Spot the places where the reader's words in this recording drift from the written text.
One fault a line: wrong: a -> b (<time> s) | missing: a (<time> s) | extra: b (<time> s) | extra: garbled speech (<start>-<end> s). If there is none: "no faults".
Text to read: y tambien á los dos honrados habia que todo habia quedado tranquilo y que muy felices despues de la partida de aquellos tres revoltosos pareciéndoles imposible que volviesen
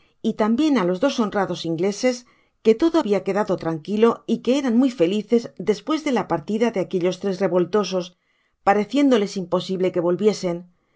wrong: habia -> ingleses (1.7 s)
extra: eran (4.6 s)